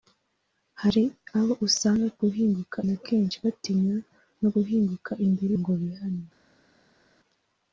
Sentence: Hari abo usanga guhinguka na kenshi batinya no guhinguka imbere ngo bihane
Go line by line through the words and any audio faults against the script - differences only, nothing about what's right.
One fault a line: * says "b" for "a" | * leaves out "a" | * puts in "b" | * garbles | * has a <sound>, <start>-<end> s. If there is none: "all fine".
all fine